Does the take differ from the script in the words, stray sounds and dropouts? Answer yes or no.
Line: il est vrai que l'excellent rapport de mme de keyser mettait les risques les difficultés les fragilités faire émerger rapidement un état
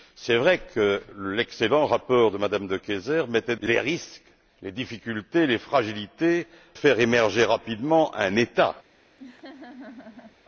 yes